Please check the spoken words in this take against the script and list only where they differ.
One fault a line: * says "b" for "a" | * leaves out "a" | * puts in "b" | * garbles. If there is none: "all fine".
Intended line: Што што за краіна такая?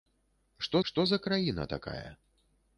all fine